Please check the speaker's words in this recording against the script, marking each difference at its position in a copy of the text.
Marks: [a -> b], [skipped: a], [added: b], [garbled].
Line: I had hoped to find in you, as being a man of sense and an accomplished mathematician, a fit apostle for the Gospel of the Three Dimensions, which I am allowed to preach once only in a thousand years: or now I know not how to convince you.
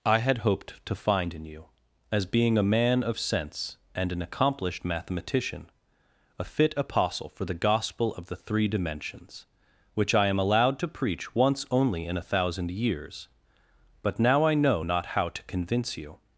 I had hoped to find in you, as being a man of sense and an accomplished mathematician, a fit apostle for the Gospel of the Three Dimensions, which I am allowed to preach once only in a thousand years: [or -> but] now I know not how to convince you.